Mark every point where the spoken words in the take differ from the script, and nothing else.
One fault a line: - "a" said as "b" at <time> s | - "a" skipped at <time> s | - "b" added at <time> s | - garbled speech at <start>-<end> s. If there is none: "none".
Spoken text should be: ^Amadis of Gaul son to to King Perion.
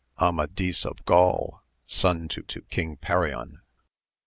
none